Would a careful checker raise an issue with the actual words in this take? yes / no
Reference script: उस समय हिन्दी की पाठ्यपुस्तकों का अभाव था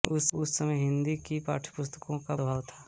no